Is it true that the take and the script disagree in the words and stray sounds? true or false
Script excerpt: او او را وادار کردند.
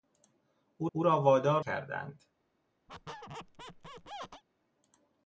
true